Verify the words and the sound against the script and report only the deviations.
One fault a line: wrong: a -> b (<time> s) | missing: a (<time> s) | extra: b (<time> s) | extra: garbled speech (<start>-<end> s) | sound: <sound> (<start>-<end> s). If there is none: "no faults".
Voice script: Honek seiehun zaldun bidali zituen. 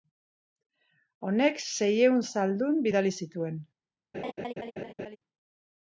sound: laugh (4.1-5.2 s)